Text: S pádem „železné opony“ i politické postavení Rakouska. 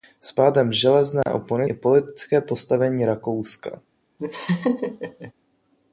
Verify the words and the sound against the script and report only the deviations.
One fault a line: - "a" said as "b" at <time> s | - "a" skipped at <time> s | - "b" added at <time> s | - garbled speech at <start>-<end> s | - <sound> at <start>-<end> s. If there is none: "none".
- dropout at 1.2-1.3 s
- laugh at 4.2-5.3 s